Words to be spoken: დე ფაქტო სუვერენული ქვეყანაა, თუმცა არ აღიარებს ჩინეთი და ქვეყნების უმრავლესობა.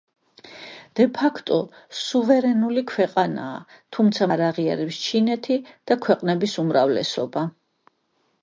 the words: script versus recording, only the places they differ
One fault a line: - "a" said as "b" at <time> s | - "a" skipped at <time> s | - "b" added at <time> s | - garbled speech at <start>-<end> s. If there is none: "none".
none